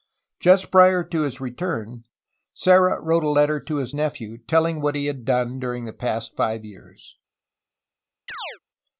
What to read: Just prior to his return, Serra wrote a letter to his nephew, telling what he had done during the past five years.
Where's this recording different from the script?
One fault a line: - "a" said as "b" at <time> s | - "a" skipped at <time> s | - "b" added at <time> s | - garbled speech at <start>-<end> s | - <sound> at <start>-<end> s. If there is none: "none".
- chirp at 8.3-8.6 s